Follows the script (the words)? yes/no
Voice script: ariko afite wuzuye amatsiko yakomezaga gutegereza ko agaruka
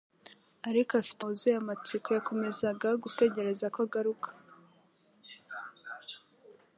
yes